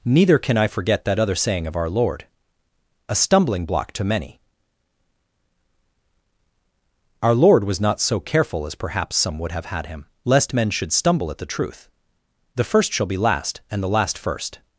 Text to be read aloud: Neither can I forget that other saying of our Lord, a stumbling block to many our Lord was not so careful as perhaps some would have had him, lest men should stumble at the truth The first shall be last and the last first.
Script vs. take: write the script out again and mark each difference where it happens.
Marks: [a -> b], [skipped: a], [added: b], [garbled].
Neither can I forget that other saying of our Lord, a stumbling block to many our Lord was not so careful as perhaps some would have had him, lest men should stumble at the truth The first shall be last and the last first.